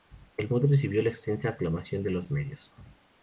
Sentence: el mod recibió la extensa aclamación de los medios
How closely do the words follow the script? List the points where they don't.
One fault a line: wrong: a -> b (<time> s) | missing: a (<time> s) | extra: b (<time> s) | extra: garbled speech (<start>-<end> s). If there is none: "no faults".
no faults